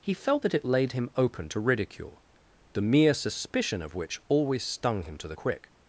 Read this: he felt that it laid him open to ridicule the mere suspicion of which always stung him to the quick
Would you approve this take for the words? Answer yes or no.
yes